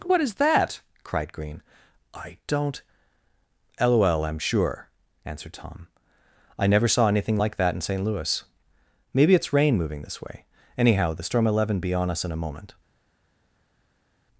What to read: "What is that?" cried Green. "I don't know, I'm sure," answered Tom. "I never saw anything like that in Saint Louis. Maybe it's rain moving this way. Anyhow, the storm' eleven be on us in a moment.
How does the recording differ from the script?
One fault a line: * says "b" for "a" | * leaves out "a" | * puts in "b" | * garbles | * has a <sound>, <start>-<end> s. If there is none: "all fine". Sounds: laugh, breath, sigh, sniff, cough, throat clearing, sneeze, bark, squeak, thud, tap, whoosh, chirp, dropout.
* says "lol" for "know"